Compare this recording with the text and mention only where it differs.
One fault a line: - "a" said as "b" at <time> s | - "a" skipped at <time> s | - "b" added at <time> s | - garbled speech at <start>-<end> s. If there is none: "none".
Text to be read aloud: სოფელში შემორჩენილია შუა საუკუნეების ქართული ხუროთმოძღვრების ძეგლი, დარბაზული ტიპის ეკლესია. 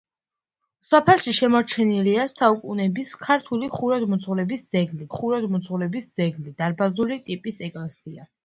- "შუა" skipped at 2.2 s
- "ხუროთმოძღვრების ძეგლი" added at 5.2 s